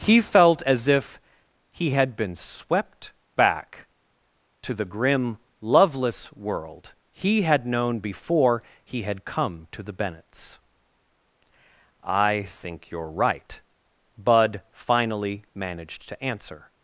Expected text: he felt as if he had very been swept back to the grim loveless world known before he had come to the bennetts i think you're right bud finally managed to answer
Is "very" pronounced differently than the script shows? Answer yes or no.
yes